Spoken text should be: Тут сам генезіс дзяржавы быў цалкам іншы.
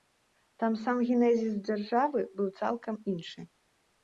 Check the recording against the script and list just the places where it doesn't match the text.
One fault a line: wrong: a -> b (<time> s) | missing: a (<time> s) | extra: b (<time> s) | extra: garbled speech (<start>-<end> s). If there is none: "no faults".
wrong: Тут -> Там (0.6 s)